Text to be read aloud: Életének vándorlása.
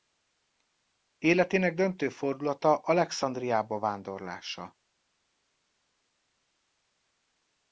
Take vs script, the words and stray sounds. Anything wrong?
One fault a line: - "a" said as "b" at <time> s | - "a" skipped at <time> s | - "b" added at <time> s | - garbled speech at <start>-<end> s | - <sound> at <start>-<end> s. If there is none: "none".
- "döntő fordulata Alexandriába" added at 1.7 s